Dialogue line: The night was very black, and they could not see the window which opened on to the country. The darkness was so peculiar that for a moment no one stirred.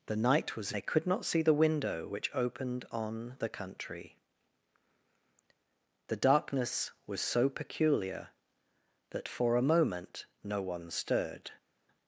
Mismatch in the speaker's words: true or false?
true